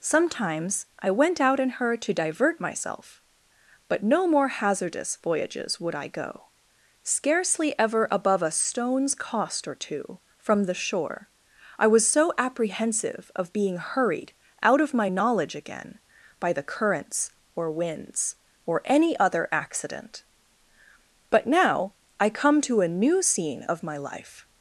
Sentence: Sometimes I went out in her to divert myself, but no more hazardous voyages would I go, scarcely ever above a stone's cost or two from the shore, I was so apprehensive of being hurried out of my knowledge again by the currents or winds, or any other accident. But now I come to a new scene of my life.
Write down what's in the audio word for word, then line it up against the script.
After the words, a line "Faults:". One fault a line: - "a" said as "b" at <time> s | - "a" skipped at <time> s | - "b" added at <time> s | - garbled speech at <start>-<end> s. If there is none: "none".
Sometimes I went out in her to divert myself, but no more hazardous voyages would I go, scarcely ever above a stone's cost or two from the shore, I was so apprehensive of being hurried out of my knowledge again by the currents or winds, or any other accident. But now I come to a new scene of my life.
Faults:
none